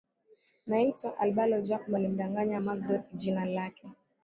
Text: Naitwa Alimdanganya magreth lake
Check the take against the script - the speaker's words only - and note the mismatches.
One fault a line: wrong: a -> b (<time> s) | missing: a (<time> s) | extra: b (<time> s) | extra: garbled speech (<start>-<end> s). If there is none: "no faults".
extra: Albalo Jacob (1.2 s)
extra: jina (3.1 s)